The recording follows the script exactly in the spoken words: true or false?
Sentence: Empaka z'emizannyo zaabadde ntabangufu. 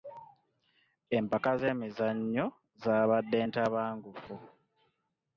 true